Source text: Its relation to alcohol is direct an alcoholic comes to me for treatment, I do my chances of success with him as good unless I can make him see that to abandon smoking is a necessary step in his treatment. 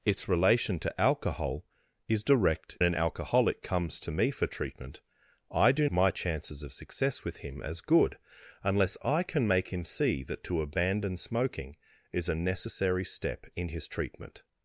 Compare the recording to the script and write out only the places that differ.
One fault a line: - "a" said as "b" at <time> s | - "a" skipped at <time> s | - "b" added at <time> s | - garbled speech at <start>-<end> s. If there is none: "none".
none